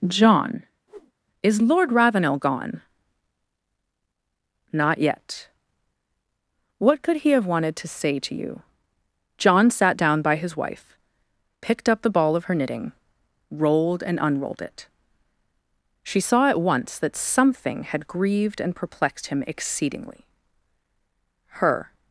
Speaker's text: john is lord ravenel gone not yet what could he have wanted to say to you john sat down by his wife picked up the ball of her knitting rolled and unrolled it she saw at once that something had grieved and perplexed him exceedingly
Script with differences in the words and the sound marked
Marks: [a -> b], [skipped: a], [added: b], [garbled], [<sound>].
john [whoosh] is lord ravenel gone not yet what could he have wanted to say to you john sat down by his wife picked up the ball of her knitting rolled and unrolled it she saw at once that something had grieved and perplexed him exceedingly [added: her]